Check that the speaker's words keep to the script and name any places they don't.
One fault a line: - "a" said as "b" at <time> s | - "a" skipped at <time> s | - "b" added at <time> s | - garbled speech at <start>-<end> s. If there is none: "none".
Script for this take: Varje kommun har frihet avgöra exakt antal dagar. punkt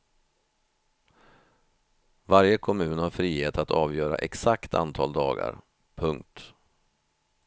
- "att" added at 3.6 s